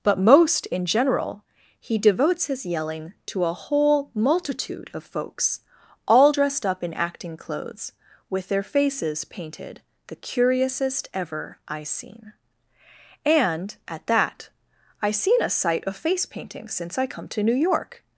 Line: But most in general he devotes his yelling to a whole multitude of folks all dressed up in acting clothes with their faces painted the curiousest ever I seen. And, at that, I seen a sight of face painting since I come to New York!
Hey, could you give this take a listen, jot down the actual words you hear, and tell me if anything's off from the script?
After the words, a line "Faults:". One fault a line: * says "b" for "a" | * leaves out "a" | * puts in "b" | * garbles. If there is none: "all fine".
But most in general he devotes his yelling to a whole multitude of folks all dressed up in acting clothes with their faces painted the curiousest ever I seen. And, at that, I seen a sight of face painting since I come to New York!
Faults:
all fine